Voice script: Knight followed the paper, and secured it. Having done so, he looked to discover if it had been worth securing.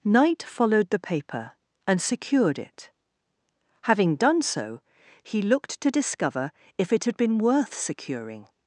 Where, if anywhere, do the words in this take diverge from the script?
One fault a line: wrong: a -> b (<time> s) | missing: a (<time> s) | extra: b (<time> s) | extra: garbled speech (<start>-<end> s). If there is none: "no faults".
no faults